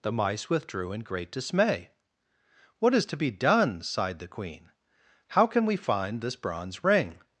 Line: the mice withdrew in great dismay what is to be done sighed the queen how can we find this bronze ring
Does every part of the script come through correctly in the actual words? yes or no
yes